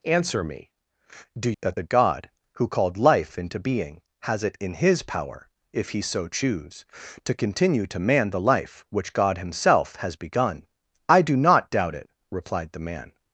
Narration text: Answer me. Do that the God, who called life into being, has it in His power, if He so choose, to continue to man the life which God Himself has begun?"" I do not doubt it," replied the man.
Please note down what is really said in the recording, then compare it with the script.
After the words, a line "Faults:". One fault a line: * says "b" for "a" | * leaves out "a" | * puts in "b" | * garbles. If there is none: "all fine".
Answer me. Do that the God, who called life into being, has it in His power, if He so choose, to continue to man the life which God Himself has begun?"" I do not doubt it," replied the man.
Faults:
all fine